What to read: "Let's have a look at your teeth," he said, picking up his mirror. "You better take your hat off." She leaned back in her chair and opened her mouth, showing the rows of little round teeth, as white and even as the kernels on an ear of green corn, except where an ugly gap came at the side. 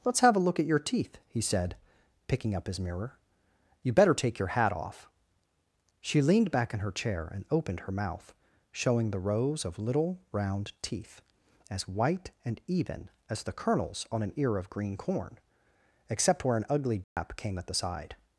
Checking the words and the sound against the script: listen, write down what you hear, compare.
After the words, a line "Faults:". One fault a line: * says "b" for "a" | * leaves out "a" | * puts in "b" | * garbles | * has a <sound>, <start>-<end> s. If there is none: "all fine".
"Let's have a look at your teeth," he said, picking up his mirror. "You better take your hat off." She leaned back in her chair and opened her mouth, showing the rows of little round teeth, as white and even as the kernels on an ear of green corn, except where an ugly gap came at the side.
Faults:
* has a dropout, 17.0-17.2 s